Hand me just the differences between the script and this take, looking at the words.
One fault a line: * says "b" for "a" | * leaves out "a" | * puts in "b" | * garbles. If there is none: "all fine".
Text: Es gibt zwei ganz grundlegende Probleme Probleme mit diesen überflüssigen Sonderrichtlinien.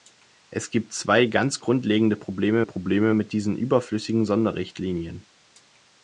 all fine